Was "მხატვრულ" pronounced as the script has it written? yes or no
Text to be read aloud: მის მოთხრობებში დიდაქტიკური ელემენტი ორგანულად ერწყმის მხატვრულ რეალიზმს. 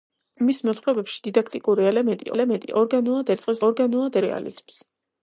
no